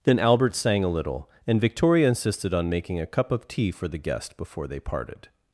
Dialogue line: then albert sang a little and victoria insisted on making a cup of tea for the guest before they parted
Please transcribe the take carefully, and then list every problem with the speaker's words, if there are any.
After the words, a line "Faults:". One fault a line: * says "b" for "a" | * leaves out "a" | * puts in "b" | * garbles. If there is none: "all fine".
then albert sang a little and victoria insisted on making a cup of tea for the guest before they parted
Faults:
all fine